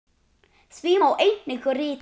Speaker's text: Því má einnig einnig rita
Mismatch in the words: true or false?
true